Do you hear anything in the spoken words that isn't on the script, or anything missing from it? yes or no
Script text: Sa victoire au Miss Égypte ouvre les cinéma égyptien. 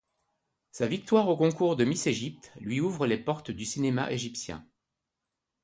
yes